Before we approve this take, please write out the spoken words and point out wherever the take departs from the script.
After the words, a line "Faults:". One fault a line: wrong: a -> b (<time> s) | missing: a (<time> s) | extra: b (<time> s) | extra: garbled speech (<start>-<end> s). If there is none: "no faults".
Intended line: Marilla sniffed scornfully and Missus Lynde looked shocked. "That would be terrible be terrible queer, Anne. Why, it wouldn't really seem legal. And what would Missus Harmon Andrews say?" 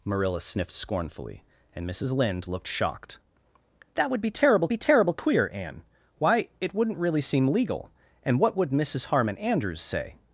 Marilla sniffed scornfully and Missus Lynde looked shocked. "That would be terrible be terrible queer, Anne. Why, it wouldn't really seem legal. And what would Missus Harmon Andrews say?"
Faults:
no faults